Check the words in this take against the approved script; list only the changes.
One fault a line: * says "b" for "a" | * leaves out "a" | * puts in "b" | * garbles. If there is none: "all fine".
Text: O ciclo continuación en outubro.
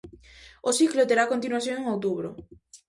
* puts in "terá"